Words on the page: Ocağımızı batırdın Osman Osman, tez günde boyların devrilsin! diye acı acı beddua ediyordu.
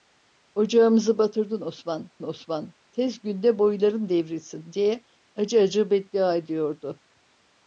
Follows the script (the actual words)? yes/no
yes